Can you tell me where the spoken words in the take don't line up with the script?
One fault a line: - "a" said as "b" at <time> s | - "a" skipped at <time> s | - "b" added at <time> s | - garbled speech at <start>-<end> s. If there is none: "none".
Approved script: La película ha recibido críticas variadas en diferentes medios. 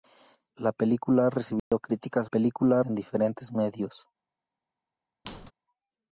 - "variadas" said as "película" at 2.2 s